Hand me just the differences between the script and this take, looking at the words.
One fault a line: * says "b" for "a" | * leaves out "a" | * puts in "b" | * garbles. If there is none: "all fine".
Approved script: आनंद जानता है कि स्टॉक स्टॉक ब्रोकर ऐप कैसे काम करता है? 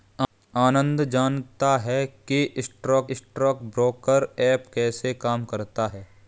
all fine